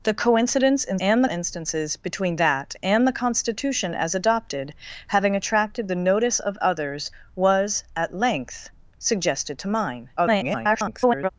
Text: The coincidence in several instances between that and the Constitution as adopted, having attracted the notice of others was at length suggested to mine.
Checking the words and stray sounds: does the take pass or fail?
fail